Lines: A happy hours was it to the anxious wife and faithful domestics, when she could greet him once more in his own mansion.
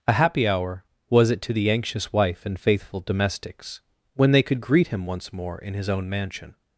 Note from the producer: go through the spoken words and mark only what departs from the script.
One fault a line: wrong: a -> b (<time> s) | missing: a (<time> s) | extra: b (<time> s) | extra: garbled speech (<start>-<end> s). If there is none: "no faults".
wrong: hours -> hour (0.5 s)
wrong: she -> they (4.3 s)